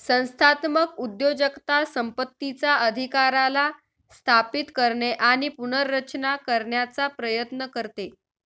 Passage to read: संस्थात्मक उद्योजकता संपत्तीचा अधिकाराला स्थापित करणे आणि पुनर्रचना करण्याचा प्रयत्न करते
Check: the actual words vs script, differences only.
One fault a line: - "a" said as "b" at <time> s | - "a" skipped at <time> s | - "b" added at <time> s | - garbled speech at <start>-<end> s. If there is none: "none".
none